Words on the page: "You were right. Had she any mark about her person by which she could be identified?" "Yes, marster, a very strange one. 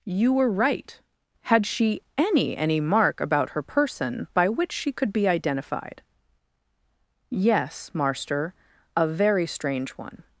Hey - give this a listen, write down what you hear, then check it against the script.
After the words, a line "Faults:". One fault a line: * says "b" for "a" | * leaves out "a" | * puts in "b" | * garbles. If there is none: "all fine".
"You were right. Had she any any mark about her person by which she could be identified?" "Yes, marster, a very strange one.
Faults:
* puts in "any"